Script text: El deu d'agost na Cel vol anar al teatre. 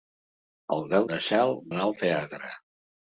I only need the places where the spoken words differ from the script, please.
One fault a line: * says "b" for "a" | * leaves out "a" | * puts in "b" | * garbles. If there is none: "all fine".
* leaves out "d'agost"
* leaves out "vol"